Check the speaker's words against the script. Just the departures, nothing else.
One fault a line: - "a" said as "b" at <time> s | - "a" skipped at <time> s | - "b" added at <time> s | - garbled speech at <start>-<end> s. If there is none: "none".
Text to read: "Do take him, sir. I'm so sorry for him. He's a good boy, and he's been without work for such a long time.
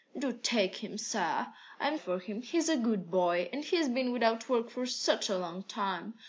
- "so sorry" skipped at 2.0 s